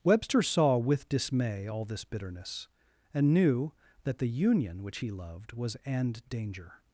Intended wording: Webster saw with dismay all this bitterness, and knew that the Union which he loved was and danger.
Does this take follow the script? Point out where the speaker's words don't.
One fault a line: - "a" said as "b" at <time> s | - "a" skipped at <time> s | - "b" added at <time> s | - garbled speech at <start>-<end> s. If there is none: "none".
none